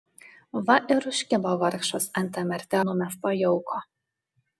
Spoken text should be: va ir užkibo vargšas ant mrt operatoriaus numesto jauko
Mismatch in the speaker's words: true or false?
true